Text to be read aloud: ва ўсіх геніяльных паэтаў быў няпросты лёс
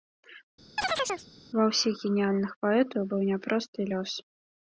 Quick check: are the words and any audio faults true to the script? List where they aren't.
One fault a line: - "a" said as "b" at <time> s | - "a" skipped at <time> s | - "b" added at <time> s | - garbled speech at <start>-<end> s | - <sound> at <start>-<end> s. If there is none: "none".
- chirp at 0.8-1.3 s